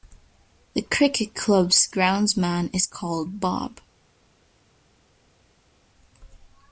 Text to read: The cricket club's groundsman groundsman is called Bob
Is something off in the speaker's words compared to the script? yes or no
yes